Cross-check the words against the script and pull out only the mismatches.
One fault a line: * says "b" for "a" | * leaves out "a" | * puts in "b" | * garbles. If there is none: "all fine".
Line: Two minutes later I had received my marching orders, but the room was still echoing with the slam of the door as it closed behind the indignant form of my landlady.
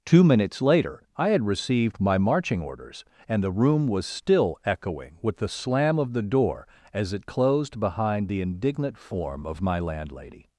* says "and" for "but"